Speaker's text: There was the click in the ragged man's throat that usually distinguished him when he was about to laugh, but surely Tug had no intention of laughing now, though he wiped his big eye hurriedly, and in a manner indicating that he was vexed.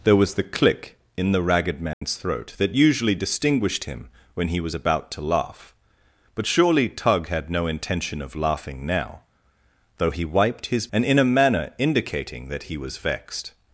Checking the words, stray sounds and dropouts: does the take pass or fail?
fail